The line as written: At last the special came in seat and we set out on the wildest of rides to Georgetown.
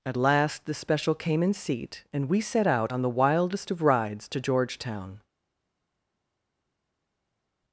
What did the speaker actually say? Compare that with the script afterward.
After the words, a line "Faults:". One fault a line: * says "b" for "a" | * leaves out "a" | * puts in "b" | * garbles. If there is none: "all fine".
At last the special came in seat and we set out on the wildest of rides to Georgetown.
Faults:
all fine